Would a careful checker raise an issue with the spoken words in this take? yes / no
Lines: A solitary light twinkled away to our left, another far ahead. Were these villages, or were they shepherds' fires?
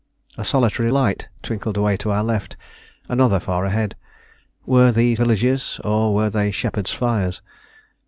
no